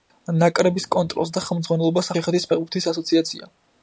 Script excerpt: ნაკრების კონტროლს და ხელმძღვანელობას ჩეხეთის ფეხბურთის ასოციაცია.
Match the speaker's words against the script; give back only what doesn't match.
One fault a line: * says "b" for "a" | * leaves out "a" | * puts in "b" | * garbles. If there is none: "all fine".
all fine